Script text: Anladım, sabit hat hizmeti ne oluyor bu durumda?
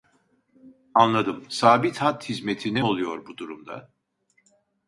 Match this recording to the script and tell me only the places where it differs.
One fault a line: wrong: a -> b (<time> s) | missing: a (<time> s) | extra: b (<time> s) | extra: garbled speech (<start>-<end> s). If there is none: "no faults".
no faults